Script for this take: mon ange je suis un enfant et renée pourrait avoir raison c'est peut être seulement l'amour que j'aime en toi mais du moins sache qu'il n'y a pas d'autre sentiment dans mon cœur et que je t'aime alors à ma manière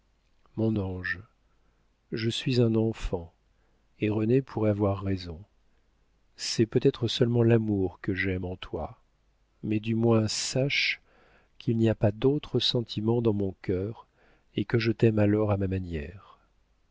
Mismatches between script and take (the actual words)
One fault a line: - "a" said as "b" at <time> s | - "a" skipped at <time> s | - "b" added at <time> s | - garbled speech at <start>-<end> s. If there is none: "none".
none